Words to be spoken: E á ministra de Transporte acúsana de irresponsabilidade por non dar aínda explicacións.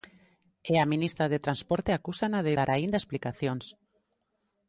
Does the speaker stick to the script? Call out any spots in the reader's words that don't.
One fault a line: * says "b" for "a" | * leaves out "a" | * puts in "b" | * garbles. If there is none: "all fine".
* leaves out "irresponsabilidade por non"